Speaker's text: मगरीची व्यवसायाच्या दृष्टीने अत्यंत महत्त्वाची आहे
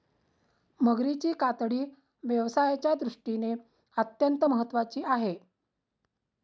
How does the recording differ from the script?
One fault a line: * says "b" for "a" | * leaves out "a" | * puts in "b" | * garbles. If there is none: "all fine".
* puts in "कातडी"